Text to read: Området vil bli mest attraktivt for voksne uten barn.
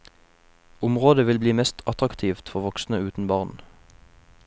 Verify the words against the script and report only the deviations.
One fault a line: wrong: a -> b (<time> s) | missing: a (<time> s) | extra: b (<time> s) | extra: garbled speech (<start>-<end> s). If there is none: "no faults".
no faults